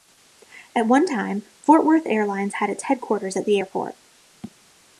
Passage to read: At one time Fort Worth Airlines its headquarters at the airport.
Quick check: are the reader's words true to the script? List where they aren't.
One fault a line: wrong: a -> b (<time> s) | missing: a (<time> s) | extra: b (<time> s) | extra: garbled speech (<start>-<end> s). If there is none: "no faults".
extra: had (2.6 s)